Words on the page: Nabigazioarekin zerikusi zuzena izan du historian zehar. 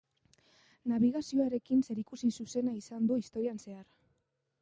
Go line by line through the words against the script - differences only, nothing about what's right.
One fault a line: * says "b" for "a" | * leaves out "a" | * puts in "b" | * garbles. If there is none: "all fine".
all fine